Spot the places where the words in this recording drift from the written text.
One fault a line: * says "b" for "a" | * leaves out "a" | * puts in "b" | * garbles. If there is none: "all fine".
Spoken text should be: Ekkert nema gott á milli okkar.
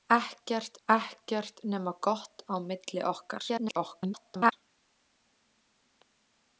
* puts in "ekkert"
* garbles